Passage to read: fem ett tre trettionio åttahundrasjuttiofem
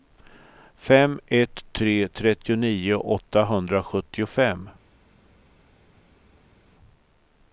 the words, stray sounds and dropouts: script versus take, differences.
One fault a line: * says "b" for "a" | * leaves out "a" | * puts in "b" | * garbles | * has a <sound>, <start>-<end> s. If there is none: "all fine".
all fine